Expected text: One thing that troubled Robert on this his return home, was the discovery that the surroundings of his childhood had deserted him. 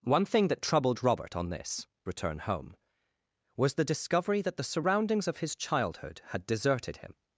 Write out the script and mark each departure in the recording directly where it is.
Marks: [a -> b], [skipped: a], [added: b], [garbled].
One thing that troubled Robert on this [skipped: his] return home, was the discovery that the surroundings of his childhood had deserted him.